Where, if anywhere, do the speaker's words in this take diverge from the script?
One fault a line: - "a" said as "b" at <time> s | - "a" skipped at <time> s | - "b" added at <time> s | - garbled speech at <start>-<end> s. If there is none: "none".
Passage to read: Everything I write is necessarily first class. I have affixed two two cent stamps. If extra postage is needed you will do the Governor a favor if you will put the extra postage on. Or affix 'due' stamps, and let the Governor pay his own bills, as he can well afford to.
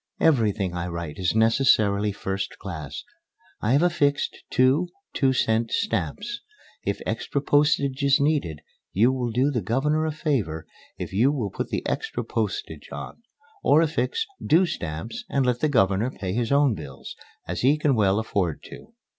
none